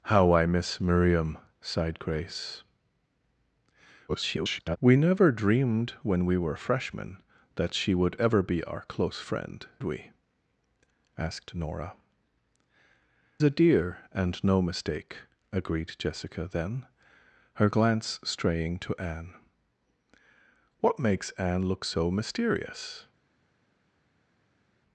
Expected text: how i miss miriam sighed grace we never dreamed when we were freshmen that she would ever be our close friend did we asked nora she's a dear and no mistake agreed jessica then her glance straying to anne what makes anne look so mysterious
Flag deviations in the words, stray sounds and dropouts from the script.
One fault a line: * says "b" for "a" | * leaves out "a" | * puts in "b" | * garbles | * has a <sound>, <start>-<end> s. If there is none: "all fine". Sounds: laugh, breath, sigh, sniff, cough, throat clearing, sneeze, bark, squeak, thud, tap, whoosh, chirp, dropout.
* garbles
* leaves out "did"
* leaves out "she's"